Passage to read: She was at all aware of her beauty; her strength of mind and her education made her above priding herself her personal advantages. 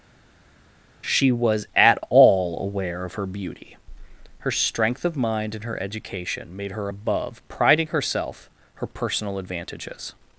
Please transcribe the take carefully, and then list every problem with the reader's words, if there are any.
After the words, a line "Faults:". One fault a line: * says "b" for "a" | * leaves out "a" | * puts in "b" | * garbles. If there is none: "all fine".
She was at all aware of her beauty; her strength of mind and her education made her above priding herself her personal advantages.
Faults:
all fine